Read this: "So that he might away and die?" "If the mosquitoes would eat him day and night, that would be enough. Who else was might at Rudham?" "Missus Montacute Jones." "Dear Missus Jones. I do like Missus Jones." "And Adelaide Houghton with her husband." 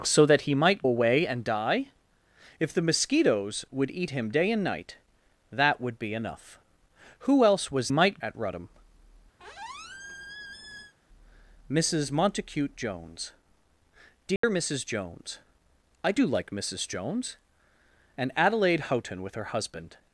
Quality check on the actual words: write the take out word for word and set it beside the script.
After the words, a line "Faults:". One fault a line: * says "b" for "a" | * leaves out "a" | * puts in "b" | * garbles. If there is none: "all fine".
"So that he might away and die?" "If the mosquitoes would eat him day and night, that would be enough. Who else was might at Rudham?" "Missus Montacute Jones." "Dear Missus Jones. I do like Missus Jones." "And Adelaide Houghton with her husband."
Faults:
all fine